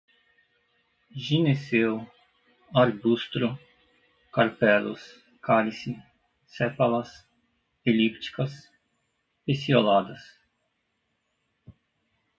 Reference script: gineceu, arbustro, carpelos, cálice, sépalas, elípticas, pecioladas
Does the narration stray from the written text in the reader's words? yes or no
no